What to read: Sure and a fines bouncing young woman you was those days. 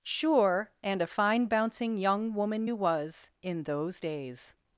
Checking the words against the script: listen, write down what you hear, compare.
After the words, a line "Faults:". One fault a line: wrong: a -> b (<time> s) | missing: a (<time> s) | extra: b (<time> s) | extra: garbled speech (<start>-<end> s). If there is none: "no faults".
Sure and a fine bouncing young woman you was in those days.
Faults:
wrong: fines -> fine (1.1 s)
extra: in (3.4 s)